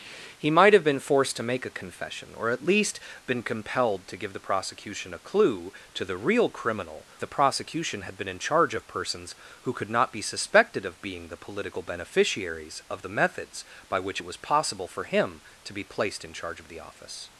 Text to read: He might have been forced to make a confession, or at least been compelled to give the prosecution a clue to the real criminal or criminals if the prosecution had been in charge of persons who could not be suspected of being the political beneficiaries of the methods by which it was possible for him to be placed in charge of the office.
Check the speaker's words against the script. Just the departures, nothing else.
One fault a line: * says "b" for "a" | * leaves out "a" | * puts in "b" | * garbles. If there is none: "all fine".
* leaves out "or criminals if"